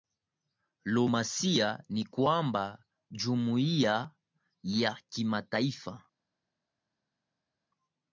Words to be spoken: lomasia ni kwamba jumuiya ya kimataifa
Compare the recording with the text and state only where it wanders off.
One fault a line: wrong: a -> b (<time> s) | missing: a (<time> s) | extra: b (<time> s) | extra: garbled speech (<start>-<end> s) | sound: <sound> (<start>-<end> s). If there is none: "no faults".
no faults